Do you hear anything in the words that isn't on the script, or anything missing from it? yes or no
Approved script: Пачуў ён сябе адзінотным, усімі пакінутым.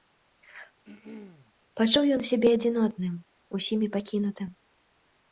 no